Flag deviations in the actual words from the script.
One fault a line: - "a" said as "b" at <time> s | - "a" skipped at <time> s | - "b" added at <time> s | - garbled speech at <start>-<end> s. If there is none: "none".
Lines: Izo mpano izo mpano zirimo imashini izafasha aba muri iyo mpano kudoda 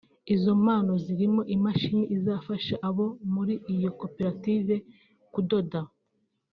- "izo mpano" skipped at 0.9 s
- "aba" said as "abo" at 2.9 s
- "mpano" said as "koperative" at 4.0 s